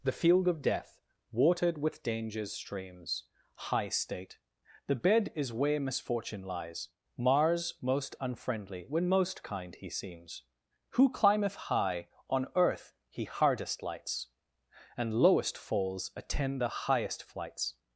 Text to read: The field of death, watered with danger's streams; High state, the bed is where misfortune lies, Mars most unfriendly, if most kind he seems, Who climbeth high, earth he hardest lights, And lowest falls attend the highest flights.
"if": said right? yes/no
no